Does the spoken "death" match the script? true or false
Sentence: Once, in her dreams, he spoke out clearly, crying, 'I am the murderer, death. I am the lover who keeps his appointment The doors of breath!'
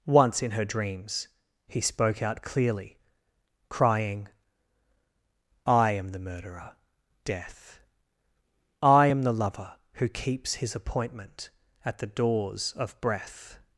true